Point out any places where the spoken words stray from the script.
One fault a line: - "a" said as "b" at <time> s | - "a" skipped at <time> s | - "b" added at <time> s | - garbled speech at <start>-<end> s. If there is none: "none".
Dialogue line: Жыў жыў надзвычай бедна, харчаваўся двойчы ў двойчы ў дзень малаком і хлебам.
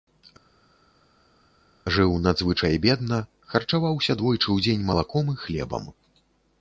- "жыў" skipped at 2.1 s
- "двойчы ў" skipped at 4.6 s